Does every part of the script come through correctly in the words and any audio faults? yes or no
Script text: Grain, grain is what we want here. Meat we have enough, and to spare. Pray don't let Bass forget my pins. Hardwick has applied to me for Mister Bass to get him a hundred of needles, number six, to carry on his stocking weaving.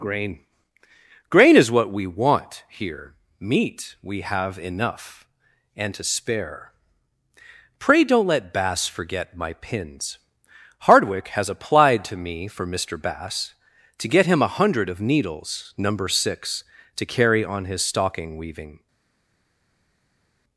yes